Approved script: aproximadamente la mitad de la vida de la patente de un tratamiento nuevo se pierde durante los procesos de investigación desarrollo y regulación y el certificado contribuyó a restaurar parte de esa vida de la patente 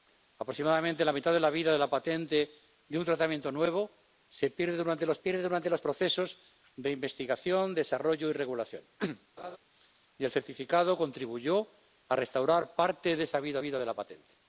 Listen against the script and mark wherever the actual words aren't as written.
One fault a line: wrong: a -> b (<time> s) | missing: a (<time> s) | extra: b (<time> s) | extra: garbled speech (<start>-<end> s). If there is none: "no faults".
extra: pierde durante los (5.2 s)
extra: vida (13.6 s)